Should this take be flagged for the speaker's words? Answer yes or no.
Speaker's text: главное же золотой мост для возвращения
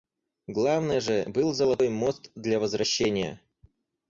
yes